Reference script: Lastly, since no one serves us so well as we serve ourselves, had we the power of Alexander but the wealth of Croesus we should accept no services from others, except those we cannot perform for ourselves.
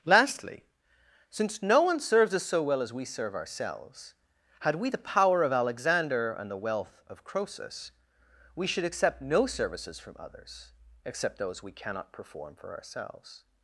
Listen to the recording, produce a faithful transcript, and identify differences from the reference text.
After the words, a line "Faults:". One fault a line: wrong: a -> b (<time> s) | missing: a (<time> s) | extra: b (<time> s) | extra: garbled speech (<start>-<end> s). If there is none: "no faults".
Lastly, since no one serves us so well as we serve ourselves, had we the power of Alexander and the wealth of Croesus we should accept no services from others, except those we cannot perform for ourselves.
Faults:
wrong: but -> and (6.3 s)